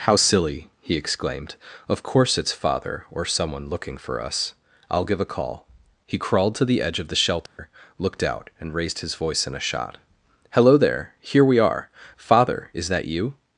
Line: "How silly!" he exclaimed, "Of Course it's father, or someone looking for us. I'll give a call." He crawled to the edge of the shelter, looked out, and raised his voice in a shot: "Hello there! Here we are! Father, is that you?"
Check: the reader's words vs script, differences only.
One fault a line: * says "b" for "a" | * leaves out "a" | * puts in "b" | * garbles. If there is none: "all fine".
all fine